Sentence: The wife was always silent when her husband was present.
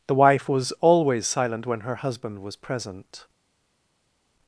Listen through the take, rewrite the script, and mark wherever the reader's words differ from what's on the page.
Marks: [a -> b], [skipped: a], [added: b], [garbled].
The wife was always silent when her husband was present.